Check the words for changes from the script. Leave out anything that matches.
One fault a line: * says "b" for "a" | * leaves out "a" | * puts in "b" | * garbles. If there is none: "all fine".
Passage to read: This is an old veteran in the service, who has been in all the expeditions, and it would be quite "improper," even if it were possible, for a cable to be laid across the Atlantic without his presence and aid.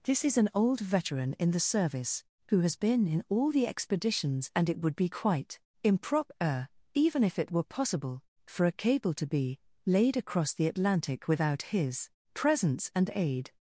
all fine